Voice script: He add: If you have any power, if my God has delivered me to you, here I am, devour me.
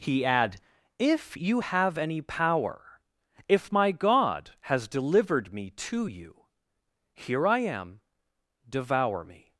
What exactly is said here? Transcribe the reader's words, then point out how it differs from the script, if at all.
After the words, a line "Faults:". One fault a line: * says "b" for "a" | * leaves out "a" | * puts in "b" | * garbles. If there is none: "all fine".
He add: If you have any power, if my God has delivered me to you, here I am, devour me.
Faults:
all fine